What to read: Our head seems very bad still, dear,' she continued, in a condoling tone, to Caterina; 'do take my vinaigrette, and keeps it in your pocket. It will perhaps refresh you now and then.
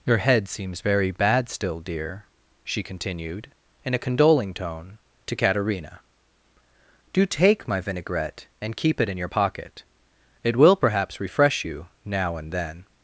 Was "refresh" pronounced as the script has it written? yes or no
yes